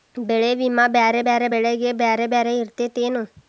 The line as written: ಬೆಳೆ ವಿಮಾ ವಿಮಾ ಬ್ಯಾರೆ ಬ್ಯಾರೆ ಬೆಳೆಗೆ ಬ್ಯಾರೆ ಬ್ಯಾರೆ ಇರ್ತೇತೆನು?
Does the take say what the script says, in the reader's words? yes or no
no